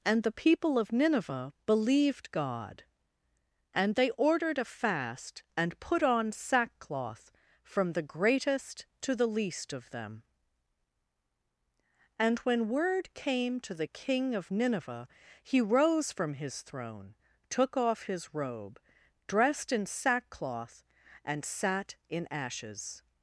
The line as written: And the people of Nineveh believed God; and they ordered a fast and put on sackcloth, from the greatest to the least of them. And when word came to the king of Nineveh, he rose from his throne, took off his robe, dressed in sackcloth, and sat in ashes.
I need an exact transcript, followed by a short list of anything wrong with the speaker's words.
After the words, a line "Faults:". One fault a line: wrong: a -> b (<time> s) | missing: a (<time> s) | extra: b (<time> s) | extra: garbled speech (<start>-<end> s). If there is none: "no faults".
And the people of Nineveh believed God; and they ordered a fast and put on sackcloth, from the greatest to the least of them. And when word came to the king of Nineveh, he rose from his throne, took off his robe, dressed in sackcloth, and sat in ashes.
Faults:
no faults